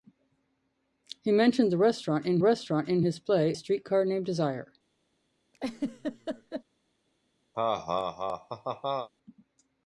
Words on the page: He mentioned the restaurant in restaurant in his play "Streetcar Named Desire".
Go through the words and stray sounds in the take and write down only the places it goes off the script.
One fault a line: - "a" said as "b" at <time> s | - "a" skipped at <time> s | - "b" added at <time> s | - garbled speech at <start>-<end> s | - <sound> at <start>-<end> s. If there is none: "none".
- laugh at 5.5-6.6 s
- laugh at 7.5-9.1 s